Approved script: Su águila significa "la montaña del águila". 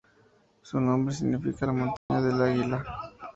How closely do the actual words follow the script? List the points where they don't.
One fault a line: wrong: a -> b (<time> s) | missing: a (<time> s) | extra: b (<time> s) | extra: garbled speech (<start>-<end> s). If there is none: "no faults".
wrong: águila -> nombre (0.8 s)